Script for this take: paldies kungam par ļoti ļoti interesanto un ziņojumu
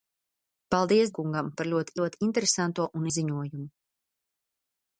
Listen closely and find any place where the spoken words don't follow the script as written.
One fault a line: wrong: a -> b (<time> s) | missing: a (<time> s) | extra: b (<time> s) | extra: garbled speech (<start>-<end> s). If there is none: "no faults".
no faults